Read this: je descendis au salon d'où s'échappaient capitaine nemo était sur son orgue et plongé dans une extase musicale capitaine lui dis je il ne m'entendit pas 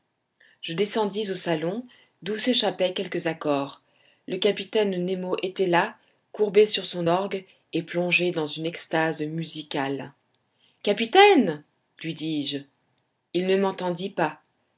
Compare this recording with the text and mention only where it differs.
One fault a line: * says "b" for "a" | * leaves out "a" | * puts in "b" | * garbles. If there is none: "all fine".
* puts in "quelques accords le"
* puts in "là courbé"